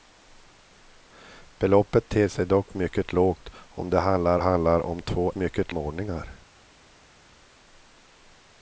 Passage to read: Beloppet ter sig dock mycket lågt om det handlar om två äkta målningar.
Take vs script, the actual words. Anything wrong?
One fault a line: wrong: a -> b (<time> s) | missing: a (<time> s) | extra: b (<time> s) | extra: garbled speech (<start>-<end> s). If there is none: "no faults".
extra: handlar (4.4 s)
wrong: äkta -> mycket (5.3 s)